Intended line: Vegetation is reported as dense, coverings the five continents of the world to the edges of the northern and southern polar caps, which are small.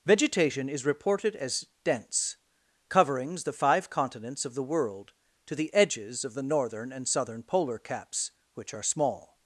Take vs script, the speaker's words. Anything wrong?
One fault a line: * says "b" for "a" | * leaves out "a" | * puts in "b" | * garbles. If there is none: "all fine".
all fine